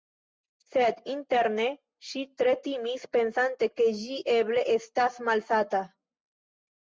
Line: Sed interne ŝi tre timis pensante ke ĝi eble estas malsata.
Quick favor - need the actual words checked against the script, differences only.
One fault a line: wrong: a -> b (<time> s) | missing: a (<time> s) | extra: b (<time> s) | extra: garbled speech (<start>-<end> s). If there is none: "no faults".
no faults